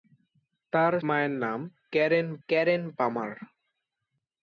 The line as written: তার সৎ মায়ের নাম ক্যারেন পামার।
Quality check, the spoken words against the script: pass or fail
fail